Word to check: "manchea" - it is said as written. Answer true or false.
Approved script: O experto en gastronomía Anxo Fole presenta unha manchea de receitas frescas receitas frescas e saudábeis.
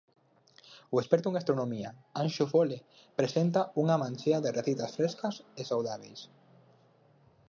true